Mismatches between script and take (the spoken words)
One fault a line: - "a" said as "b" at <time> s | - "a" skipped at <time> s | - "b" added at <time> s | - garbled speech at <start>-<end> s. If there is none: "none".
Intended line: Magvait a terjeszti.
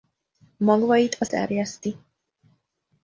none